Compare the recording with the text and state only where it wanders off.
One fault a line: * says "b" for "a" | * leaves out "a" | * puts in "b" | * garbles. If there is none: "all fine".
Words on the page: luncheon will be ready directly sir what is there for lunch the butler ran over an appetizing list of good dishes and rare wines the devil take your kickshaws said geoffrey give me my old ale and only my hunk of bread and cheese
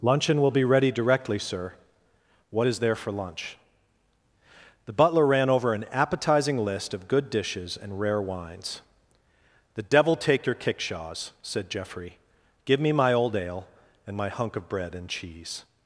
* leaves out "only"